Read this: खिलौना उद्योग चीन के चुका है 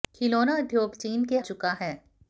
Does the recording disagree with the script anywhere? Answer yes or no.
no